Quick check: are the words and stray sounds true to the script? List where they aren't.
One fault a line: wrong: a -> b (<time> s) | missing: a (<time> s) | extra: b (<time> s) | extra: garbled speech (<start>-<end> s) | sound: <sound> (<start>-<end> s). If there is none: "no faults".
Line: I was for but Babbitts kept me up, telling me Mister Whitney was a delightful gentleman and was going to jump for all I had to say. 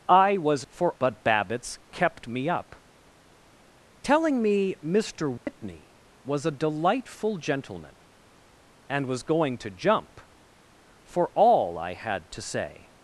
sound: dropout (5.4-5.5 s)